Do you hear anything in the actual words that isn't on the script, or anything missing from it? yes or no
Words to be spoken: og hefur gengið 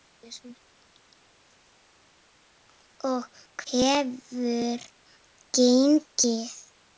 no